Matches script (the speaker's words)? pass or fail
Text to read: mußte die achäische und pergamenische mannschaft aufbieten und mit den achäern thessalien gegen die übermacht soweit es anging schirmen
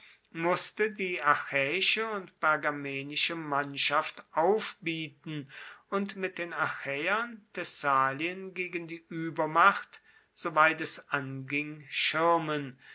pass